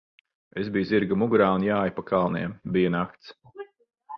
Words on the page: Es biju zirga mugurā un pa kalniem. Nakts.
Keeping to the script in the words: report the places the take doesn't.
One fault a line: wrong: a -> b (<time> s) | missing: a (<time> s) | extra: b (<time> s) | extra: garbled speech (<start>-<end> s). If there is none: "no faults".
extra: jāju (1.7 s)
extra: Bija (2.8 s)